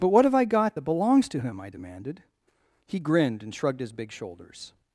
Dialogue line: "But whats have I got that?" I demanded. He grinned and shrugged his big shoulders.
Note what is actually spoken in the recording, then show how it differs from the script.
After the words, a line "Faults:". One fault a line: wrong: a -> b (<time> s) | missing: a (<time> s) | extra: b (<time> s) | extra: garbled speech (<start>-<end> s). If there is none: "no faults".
"But what have I got that belongs to him?" I demanded. He grinned and shrugged his big shoulders.
Faults:
wrong: whats -> what (0.1 s)
extra: belongs to him (0.8 s)